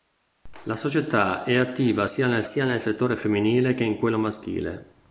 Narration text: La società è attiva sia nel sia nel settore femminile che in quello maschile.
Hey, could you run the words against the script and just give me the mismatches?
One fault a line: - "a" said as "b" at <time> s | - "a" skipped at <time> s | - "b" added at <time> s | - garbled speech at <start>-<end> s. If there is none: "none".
none